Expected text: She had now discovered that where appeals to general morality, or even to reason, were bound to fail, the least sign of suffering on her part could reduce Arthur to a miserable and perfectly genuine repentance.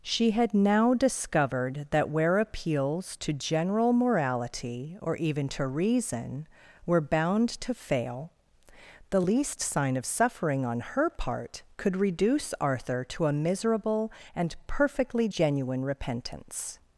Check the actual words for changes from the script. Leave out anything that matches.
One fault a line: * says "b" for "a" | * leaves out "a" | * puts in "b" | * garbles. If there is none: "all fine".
all fine